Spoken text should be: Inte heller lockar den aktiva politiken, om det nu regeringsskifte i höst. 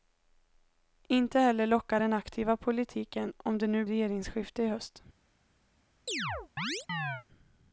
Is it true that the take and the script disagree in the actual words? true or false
false